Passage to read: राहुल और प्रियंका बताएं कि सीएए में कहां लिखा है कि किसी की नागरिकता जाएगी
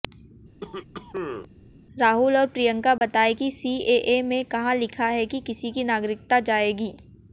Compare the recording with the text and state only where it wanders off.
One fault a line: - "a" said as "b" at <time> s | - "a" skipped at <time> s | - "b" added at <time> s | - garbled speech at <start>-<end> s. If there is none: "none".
none